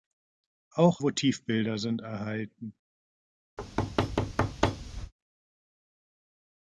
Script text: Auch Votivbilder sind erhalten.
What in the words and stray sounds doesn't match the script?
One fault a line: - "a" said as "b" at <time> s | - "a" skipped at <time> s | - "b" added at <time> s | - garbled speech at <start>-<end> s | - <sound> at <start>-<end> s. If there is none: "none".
- thud at 3.6-5.1 s